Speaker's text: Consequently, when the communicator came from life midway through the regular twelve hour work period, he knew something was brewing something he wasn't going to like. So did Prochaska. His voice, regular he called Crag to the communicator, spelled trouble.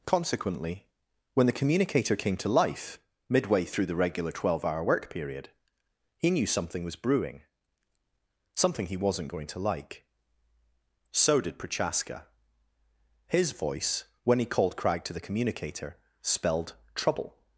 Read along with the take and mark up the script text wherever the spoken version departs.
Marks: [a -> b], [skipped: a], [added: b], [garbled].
Consequently, when the communicator came [from -> to] life midway through the regular twelve hour work period, he knew something was brewing something he wasn't going to like. So did Prochaska. His voice, [regular -> when] he called Crag to the communicator, spelled trouble.